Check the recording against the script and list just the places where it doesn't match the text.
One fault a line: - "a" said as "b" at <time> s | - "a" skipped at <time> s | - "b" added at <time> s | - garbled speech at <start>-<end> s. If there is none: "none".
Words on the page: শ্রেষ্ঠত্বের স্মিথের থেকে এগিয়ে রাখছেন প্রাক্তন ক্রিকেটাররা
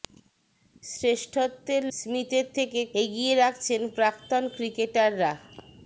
none